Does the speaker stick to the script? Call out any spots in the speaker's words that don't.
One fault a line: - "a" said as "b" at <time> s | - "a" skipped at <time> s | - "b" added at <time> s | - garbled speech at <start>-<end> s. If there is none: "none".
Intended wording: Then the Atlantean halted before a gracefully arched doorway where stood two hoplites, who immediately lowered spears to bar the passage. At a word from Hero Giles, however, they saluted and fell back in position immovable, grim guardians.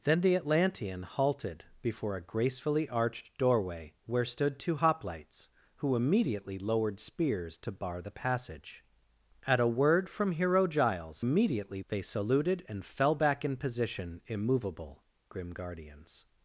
- "however" said as "immediately" at 11.2 s